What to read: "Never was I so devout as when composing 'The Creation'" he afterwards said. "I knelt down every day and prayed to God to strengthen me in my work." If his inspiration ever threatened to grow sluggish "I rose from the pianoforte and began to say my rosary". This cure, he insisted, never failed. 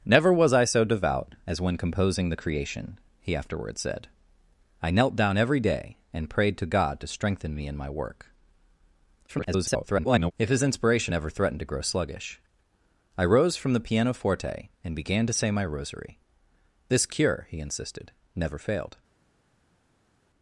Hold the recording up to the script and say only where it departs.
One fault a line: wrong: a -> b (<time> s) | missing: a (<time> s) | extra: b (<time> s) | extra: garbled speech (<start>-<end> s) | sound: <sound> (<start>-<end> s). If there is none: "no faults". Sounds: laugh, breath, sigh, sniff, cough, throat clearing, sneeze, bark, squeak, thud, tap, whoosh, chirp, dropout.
extra: garbled speech (9.3-10.3 s)